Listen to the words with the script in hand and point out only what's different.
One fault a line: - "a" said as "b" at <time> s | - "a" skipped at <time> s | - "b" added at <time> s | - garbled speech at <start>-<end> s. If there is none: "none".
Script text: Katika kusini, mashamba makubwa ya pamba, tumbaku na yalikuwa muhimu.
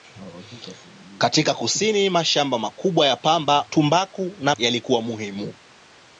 none